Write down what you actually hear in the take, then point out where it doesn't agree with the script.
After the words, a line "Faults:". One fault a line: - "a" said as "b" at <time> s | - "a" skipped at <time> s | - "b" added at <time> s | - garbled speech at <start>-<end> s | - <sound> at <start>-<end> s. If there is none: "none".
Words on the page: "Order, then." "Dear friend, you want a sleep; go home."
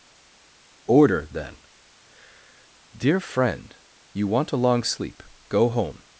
"Order, then." "Dear friend, you want a long sleep; go home."
Faults:
- "long" added at 4.6 s